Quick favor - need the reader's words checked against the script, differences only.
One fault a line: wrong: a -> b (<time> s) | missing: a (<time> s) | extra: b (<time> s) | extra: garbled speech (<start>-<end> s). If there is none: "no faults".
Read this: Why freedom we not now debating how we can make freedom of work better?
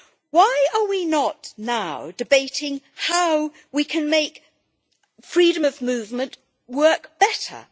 wrong: freedom -> are (0.7 s)
extra: movement (5.8 s)